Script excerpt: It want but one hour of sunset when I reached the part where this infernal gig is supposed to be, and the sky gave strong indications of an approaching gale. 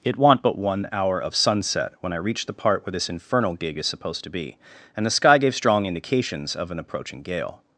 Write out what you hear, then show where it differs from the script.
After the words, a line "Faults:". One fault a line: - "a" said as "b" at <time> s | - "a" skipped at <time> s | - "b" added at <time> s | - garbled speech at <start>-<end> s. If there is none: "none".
It want but one hour of sunset when I reached the part where this infernal gig is supposed to be, and the sky gave strong indications of an approaching gale.
Faults:
none